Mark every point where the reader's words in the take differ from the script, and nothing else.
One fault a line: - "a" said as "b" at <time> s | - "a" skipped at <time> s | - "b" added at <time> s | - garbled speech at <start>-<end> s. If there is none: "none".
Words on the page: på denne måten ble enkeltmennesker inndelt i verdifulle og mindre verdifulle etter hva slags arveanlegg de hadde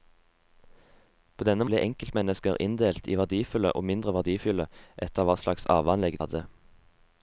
- "måten" skipped at 1.7 s
- "de" skipped at 6.2 s